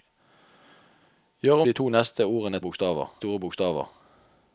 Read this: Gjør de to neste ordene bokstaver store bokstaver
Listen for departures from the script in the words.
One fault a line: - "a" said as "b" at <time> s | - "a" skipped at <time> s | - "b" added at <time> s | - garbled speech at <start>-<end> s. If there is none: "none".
none